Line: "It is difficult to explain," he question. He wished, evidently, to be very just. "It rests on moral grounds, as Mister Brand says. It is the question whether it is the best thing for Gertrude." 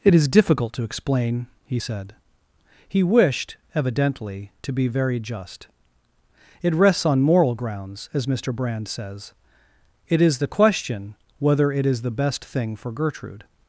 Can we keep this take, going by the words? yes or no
no